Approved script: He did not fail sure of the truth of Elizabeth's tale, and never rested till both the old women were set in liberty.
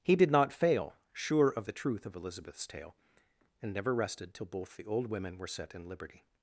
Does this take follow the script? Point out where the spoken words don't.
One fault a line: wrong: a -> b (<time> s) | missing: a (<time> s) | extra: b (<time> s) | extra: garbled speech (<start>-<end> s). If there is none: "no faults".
no faults